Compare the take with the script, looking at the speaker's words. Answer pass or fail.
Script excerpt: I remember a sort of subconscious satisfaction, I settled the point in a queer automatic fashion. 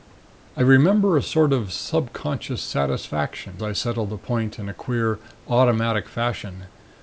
pass